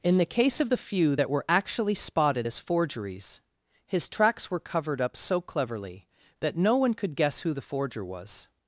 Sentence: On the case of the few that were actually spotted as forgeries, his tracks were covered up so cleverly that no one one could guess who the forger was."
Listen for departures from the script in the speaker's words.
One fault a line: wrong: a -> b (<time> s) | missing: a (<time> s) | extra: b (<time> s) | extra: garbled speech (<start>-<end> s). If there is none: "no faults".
wrong: On -> In (0.0 s)
missing: one (7.0 s)